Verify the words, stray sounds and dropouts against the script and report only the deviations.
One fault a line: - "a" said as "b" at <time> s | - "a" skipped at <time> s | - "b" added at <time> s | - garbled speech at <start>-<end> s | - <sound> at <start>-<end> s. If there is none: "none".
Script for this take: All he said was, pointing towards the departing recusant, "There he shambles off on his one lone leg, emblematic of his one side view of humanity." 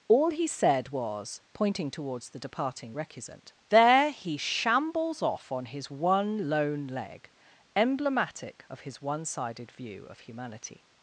- "side" said as "sided" at 9.2 s